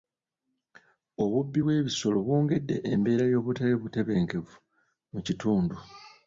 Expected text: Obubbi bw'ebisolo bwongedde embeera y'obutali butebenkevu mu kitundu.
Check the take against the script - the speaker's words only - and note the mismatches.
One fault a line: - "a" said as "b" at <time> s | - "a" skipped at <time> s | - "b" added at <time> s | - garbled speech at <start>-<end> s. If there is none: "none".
none